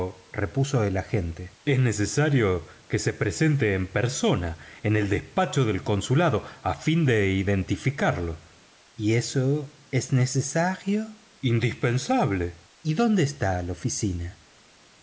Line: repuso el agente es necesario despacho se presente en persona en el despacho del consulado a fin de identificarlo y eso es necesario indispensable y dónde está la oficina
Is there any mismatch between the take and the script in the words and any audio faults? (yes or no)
yes